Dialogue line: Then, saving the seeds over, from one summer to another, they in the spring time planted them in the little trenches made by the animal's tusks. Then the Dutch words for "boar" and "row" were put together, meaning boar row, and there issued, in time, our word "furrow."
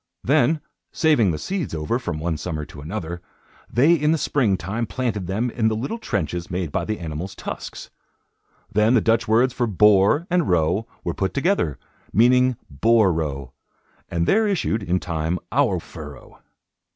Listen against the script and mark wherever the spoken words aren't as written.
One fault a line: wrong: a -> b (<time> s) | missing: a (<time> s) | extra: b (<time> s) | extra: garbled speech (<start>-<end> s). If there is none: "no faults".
missing: word (15.8 s)